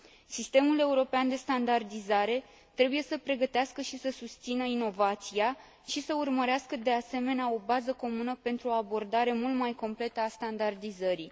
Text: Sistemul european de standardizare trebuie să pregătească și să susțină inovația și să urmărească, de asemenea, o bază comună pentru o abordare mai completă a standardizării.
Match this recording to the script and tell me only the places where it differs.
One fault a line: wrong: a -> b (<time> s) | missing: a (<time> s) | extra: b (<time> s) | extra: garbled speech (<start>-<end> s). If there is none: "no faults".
extra: mult (9.3 s)